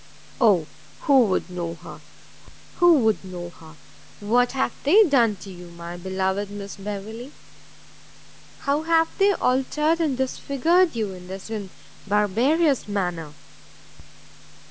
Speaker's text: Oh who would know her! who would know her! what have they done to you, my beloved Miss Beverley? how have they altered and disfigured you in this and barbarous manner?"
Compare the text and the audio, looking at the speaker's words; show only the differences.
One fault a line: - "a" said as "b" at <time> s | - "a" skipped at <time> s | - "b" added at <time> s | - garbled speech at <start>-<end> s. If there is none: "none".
none